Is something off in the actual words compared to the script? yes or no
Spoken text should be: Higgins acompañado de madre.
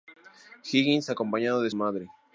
no